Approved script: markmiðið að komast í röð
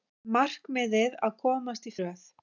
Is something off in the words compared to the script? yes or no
no